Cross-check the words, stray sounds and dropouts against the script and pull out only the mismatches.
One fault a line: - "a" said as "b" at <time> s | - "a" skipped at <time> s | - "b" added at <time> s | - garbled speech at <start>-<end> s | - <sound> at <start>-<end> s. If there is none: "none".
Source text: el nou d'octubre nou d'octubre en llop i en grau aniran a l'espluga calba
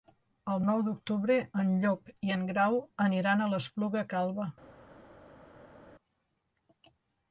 - "nou d'octubre" skipped at 1.4 s